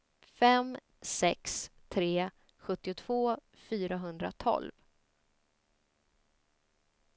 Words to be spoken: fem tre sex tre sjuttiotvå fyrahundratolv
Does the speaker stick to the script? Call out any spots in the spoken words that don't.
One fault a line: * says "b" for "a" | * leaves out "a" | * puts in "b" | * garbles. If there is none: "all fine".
* leaves out "tre"